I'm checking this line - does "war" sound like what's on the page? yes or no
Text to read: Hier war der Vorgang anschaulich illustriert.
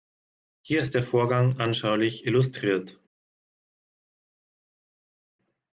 no